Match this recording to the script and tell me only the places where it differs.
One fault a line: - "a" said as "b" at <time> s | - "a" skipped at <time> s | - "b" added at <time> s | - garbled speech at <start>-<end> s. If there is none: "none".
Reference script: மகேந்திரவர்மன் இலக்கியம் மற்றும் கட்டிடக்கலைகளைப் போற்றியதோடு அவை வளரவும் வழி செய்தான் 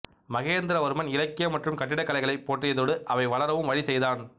none